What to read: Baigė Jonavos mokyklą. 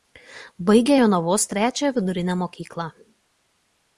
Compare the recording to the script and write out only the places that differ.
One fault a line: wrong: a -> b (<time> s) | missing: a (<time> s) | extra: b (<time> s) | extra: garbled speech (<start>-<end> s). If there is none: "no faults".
extra: trečiąją vidurinę (1.5 s)